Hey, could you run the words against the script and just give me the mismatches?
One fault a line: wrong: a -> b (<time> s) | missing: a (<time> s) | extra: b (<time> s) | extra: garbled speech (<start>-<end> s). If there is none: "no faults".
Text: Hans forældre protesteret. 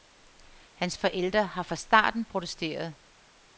extra: har fra starten (1.4 s)